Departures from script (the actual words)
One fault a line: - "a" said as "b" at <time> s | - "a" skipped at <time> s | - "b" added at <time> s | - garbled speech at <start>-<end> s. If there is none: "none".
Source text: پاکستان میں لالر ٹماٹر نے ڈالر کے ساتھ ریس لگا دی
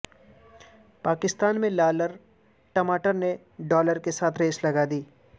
none